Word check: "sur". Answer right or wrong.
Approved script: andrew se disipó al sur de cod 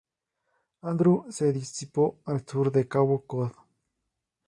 right